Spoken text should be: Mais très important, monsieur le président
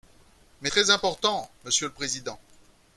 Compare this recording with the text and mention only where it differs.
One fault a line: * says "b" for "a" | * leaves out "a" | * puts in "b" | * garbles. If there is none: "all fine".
all fine